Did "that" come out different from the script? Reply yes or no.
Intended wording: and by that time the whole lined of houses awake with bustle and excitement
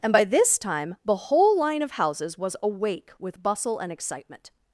yes